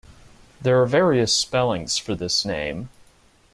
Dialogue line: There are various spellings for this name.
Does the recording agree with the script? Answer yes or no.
yes